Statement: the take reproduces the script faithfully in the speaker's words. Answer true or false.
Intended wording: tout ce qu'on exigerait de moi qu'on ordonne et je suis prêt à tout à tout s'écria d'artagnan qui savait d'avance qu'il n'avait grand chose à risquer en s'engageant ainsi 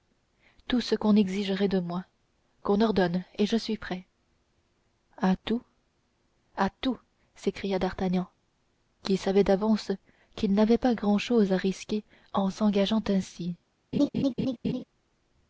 false